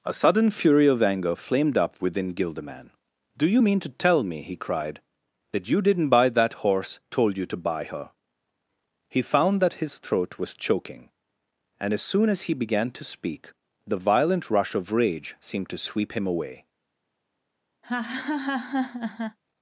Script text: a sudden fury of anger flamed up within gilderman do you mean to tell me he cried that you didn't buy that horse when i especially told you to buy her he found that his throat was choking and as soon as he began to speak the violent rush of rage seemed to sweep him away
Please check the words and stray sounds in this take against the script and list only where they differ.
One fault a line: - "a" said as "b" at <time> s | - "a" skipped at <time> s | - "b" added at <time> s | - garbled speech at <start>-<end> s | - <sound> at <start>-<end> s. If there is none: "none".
- "when i especially" skipped at 7.0 s
- laugh at 17.8-19.4 s